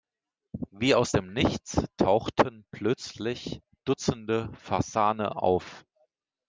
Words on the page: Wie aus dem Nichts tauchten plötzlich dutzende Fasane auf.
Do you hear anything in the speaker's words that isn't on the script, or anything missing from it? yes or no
no